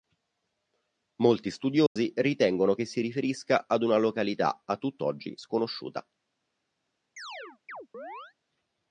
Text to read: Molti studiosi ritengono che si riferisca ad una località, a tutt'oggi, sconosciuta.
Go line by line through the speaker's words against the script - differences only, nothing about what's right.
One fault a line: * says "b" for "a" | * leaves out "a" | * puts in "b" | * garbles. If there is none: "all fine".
all fine